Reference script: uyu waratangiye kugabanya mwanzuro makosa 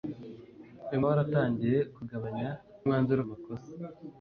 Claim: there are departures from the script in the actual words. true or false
false